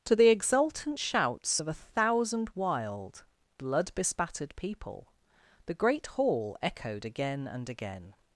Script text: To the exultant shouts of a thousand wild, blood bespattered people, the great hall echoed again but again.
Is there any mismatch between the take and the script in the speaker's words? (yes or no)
yes